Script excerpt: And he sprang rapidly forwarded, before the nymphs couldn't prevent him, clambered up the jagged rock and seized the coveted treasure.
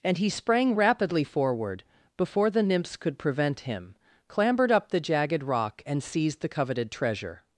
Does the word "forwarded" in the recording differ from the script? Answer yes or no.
yes